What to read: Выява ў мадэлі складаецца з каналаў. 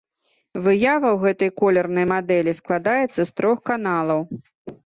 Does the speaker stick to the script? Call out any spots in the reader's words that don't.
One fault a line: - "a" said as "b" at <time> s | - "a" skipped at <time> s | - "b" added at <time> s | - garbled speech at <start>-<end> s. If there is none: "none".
- "гэтай колернай" added at 1.2 s
- "трох" added at 3.4 s